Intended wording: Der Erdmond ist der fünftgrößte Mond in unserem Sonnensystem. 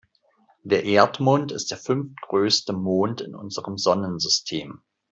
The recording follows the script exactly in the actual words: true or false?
true